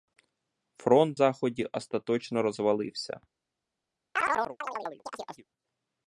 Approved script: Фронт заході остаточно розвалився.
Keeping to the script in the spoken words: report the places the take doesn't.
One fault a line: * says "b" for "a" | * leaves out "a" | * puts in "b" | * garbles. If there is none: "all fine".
all fine